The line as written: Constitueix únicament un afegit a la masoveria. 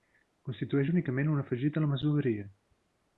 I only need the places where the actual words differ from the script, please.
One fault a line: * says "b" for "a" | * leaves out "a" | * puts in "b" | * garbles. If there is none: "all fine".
all fine